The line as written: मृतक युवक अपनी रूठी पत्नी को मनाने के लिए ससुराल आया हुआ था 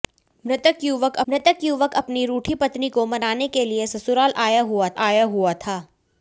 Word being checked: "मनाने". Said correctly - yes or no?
yes